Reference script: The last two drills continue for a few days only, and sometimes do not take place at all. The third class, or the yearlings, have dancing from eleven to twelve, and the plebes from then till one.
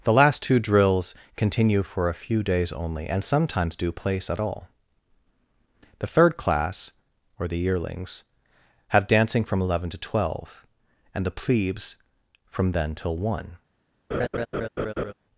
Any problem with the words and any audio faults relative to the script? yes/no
yes